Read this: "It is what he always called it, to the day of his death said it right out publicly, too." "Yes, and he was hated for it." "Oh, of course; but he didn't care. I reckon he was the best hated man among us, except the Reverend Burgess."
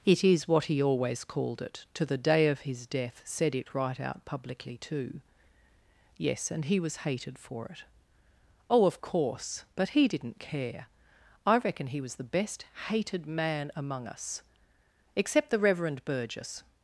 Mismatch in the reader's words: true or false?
false